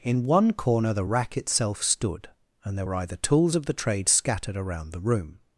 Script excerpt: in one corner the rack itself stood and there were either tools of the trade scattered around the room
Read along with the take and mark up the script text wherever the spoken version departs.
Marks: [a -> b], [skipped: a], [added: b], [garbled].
in one corner the rack itself stood and there were either tools of the trade scattered around the room